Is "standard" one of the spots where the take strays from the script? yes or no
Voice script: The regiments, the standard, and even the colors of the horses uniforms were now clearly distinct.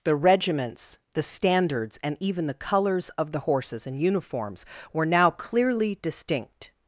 yes